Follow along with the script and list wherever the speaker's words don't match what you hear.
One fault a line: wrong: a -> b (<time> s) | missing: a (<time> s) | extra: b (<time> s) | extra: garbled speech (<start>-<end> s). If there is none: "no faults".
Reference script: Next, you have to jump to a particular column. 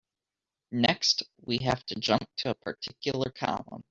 wrong: you -> we (1.4 s)